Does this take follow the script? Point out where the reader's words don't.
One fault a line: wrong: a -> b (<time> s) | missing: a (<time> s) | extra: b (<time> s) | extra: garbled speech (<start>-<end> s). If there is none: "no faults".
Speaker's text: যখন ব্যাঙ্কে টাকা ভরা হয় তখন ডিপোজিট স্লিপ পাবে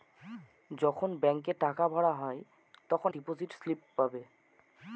no faults